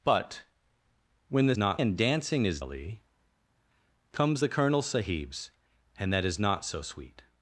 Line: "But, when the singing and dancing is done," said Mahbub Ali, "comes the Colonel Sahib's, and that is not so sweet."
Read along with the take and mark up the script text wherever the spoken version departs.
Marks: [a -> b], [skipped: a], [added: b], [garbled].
"But, when the [singing -> not] and dancing is [skipped: done," said Mahbub] Ali, "comes the Colonel Sahib's, and that is not so sweet."